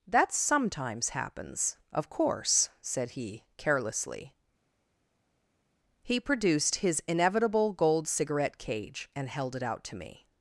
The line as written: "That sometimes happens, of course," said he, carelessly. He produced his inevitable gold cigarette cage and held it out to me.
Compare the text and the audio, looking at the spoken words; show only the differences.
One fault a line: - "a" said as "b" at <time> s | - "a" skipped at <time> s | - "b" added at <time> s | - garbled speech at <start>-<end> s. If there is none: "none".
none